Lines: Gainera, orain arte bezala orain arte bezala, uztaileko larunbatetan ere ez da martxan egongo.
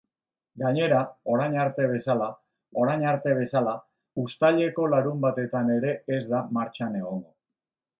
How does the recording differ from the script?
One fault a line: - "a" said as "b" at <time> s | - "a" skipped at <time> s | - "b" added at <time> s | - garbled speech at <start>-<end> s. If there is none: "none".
none